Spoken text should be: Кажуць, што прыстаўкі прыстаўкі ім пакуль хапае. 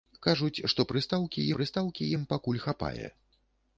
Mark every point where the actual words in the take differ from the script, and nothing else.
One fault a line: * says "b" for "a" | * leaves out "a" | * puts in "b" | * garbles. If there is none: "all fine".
all fine